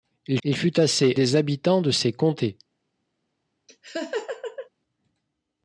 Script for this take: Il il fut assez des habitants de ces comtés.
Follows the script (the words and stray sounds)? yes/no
no